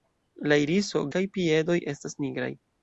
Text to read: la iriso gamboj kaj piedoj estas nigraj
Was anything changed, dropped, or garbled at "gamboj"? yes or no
yes